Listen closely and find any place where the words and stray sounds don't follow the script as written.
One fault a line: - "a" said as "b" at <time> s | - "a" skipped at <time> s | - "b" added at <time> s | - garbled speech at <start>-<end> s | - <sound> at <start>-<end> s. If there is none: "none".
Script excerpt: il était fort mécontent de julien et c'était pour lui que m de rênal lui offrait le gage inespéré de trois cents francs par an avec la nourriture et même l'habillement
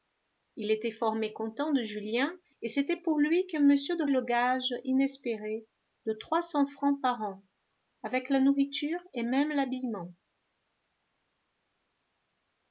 - "rênal lui offrait" skipped at 4.1 s